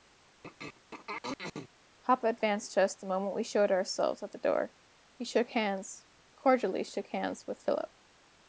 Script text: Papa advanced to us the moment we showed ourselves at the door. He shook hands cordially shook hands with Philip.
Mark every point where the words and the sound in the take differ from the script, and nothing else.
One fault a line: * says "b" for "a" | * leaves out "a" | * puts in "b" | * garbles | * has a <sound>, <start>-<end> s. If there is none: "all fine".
* has a throat clearing, 0.4-1.7 s